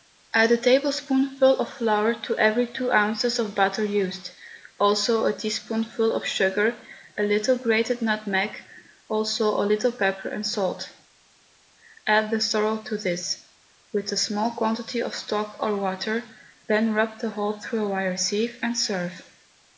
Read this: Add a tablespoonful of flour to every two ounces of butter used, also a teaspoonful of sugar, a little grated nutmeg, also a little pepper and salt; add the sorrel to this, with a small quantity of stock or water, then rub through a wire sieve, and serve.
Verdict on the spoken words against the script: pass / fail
fail